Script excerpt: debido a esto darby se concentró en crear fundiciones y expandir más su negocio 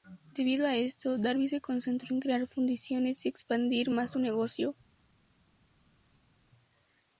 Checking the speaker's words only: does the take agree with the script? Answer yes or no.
yes